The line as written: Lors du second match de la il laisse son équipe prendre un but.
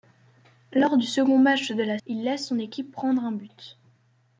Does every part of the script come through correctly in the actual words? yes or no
yes